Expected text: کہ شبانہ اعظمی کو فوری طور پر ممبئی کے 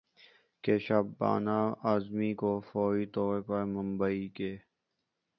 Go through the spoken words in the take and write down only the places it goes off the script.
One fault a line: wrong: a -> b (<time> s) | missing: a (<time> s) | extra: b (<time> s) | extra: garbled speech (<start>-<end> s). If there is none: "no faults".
no faults